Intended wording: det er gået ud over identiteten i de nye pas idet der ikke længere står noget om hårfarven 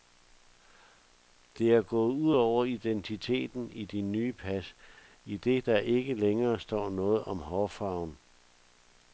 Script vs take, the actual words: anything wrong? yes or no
no